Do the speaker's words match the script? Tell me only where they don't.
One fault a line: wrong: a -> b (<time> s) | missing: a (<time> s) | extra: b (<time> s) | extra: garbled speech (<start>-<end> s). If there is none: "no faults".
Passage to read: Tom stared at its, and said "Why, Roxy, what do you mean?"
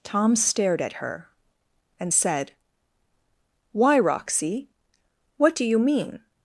wrong: its -> her (0.9 s)